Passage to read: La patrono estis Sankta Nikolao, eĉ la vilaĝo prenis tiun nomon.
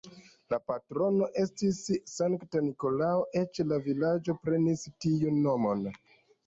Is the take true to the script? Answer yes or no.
yes